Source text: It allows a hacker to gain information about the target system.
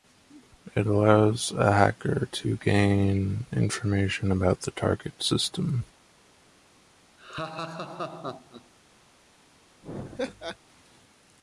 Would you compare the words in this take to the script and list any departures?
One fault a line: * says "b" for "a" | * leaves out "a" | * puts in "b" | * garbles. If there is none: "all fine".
all fine